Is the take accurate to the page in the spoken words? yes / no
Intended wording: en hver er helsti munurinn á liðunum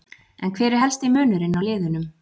yes